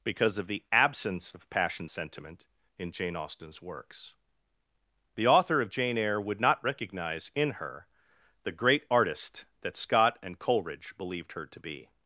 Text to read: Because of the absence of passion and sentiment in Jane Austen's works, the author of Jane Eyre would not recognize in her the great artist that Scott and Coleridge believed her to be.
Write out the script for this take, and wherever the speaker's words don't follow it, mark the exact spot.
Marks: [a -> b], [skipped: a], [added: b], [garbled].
Because of the absence of passion [skipped: and] sentiment in Jane Austen's works, the author of Jane Eyre would not recognize in her the great artist that Scott and Coleridge believed her to be.